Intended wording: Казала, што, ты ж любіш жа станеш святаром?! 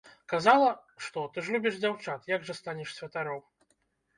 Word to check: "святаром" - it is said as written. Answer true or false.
true